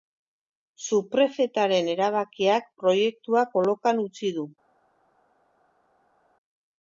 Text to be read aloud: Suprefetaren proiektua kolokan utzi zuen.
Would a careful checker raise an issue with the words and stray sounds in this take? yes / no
yes